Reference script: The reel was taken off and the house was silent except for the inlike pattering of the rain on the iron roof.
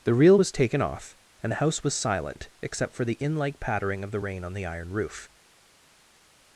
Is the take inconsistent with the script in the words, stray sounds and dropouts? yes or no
no